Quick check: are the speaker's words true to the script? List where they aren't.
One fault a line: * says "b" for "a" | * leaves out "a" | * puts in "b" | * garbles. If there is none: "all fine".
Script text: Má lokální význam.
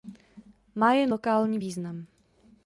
* puts in "jen"